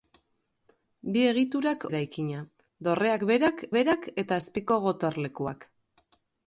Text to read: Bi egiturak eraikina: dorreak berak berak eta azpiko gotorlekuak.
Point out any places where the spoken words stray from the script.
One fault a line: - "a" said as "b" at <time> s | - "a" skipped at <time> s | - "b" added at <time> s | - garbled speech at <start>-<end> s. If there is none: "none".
none